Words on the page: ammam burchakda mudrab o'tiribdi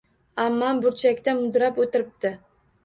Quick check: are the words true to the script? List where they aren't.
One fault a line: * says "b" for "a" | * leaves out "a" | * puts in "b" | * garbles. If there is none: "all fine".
all fine